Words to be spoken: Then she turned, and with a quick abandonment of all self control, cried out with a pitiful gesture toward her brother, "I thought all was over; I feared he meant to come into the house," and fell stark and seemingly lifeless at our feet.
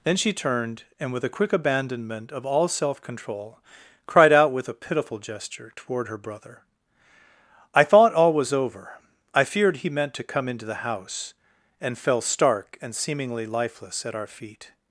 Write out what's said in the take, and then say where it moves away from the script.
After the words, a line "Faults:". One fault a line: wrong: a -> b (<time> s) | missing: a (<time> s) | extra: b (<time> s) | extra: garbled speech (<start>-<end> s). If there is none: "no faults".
Then she turned, and with a quick abandonment of all self control, cried out with a pitiful gesture toward her brother, "I thought all was over; I feared he meant to come into the house," and fell stark and seemingly lifeless at our feet.
Faults:
no faults